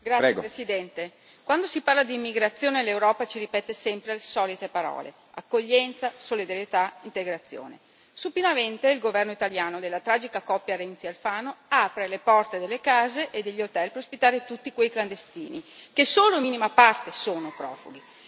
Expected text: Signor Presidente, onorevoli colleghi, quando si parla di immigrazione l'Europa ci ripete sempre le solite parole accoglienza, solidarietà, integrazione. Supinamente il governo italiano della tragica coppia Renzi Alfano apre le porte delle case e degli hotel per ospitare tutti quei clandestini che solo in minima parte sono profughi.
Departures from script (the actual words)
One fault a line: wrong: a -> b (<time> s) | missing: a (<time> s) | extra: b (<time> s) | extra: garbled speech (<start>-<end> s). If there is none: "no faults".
no faults